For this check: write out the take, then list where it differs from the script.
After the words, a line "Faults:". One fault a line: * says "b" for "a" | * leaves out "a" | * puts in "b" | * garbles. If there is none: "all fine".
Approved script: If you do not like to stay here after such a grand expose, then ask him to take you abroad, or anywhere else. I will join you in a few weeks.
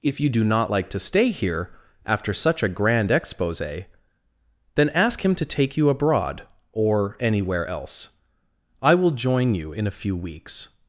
If you do not like to stay here after such a grand expose, then ask him to take you abroad, or anywhere else. I will join you in a few weeks.
Faults:
all fine